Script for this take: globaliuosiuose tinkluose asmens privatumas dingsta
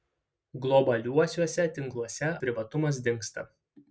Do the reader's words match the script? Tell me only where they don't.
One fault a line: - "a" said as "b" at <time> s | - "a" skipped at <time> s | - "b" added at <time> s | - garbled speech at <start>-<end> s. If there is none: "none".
- "asmens" skipped at 2.3 s